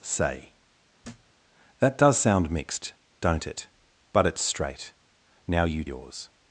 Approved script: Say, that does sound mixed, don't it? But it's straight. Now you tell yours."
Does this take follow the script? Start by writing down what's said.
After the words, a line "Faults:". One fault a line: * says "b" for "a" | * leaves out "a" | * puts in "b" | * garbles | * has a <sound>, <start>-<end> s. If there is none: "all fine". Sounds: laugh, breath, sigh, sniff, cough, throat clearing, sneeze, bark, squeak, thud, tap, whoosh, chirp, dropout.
Say, that does sound mixed, don't it? But it's straight. Now you yours."
Faults:
* has a thud, 1.0-1.3 s
* leaves out "tell"